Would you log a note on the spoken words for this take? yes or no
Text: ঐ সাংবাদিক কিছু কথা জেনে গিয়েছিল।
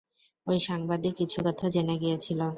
no